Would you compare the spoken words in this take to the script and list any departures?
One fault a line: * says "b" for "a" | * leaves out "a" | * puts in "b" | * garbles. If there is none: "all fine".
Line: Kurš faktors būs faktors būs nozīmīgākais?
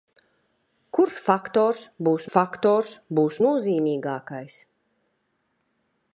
all fine